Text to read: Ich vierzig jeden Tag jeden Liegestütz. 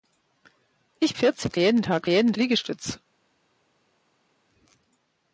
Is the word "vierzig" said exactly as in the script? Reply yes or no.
yes